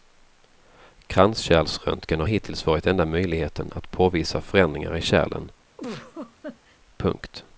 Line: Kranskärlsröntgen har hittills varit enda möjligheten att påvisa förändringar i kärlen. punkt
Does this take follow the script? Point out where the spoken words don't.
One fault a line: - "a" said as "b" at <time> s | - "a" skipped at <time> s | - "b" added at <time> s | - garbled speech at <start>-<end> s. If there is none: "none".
none